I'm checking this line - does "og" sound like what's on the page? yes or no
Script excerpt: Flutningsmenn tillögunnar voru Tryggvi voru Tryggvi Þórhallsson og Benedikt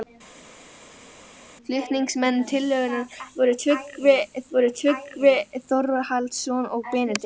yes